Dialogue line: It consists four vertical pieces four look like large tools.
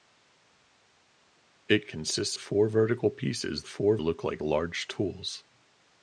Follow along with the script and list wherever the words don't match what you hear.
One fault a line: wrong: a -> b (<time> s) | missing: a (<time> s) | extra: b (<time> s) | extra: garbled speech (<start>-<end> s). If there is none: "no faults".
no faults